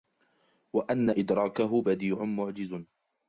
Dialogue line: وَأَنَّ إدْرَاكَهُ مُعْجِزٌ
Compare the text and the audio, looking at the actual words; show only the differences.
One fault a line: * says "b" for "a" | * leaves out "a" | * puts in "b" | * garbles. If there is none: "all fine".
* puts in "بَدِيعٌ"